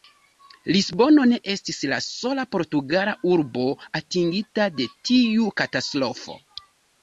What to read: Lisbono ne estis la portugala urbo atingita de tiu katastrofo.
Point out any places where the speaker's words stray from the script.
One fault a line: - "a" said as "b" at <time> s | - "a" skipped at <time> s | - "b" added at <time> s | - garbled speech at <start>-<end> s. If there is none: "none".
- "sola" added at 2.1 s